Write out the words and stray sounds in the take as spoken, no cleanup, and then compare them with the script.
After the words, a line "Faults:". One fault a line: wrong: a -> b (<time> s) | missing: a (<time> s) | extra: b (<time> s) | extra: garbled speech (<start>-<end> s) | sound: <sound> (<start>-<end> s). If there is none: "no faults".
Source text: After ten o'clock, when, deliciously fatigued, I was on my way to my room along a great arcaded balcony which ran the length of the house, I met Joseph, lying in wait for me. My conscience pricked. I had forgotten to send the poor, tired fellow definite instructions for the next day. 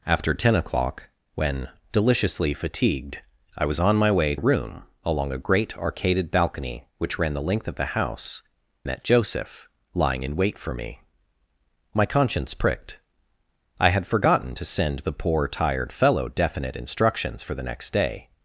After ten o'clock, when, deliciously fatigued, I was on my way room along a great arcaded balcony which ran the length of the house, met Joseph, lying in wait for me. My conscience pricked. I had forgotten to send the poor, tired fellow definite instructions for the next day.
Faults:
missing: to my (4.3 s)
missing: I (8.4 s)